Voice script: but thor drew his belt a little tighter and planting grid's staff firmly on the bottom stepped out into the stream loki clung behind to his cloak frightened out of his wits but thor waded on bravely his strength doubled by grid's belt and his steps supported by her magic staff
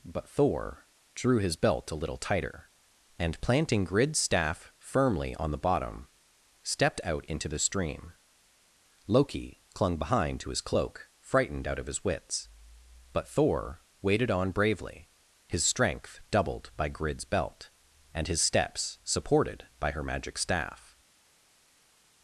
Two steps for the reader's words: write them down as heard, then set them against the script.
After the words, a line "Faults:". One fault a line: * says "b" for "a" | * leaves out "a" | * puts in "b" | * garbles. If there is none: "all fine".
but thor drew his belt a little tighter and planting grid's staff firmly on the bottom stepped out into the stream loki clung behind to his cloak frightened out of his wits but thor waded on bravely his strength doubled by grid's belt and his steps supported by her magic staff
Faults:
all fine